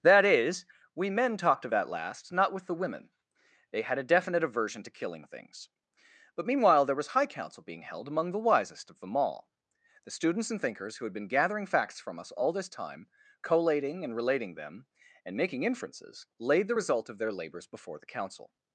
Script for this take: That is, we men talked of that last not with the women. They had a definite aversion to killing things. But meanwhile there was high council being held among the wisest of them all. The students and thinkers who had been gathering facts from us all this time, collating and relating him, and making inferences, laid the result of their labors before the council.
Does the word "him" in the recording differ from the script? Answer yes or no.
yes